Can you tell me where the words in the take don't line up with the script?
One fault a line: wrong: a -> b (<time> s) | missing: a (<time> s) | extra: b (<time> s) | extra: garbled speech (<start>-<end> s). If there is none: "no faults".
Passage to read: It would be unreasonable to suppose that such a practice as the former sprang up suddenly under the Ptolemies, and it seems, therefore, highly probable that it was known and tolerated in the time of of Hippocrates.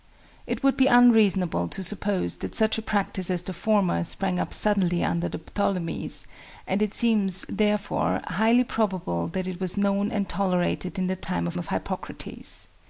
no faults